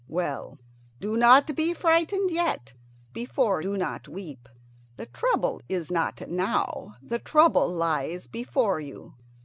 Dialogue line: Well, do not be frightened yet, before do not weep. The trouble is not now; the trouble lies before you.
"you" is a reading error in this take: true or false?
false